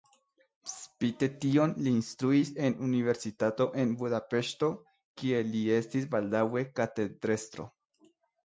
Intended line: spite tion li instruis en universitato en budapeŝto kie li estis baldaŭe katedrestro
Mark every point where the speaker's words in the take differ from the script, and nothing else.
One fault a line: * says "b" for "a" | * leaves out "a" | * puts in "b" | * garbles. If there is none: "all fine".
all fine